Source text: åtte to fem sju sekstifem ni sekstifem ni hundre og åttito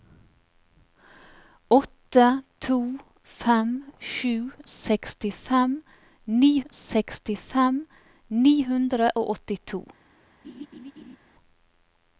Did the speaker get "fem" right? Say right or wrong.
right